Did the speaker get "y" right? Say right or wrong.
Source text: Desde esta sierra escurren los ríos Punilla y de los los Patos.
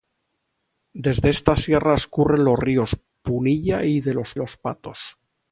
right